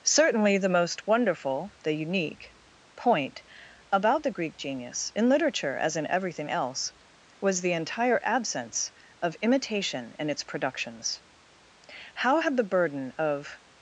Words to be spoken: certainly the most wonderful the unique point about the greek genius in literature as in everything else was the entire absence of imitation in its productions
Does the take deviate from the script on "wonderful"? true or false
false